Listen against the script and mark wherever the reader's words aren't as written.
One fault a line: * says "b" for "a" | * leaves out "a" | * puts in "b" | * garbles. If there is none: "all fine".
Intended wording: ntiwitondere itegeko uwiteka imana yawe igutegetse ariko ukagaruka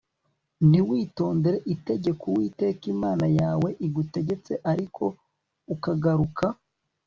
all fine